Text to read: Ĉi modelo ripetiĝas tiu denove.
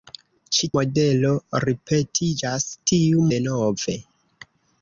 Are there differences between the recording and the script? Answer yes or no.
no